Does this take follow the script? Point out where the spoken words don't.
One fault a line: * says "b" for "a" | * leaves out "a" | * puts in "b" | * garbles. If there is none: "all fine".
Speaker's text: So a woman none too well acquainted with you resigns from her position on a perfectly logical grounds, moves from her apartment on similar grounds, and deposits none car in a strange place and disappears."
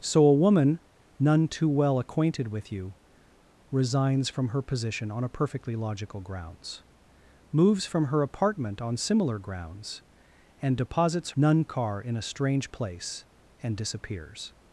all fine